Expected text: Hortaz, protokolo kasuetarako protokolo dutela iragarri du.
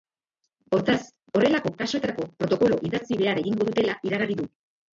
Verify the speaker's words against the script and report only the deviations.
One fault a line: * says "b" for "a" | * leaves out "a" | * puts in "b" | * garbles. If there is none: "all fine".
* says "horrelako" for "protokolo"
* puts in "idatzi behar egingo"